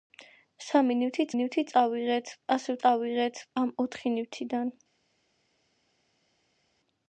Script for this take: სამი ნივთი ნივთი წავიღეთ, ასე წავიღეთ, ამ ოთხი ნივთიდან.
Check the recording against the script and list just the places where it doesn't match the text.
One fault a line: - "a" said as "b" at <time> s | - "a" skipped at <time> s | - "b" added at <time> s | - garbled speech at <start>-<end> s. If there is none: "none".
none